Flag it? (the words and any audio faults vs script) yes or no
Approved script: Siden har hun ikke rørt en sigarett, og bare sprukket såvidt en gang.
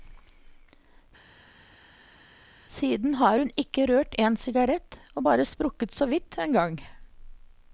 no